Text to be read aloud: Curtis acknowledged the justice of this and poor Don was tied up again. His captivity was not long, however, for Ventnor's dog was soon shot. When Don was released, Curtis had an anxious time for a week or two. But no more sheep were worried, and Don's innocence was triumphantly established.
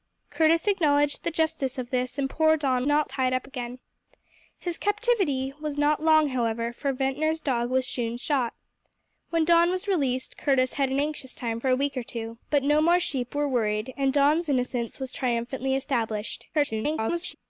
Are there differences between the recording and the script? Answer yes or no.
yes